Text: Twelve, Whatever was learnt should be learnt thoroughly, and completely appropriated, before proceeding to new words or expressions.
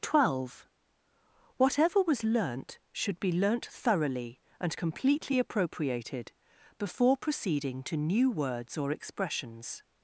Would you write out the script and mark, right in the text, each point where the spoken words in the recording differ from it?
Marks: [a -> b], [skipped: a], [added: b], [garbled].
Twelve, Whatever was learnt should be learnt thoroughly, and completely appropriated, before proceeding to new words or expressions.